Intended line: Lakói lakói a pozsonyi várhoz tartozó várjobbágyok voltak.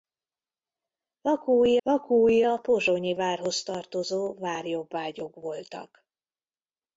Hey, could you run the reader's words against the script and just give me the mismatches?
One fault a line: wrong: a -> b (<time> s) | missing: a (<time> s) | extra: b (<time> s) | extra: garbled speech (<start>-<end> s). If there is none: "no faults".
no faults